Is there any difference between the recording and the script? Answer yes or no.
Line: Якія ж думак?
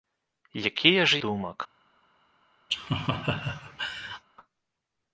no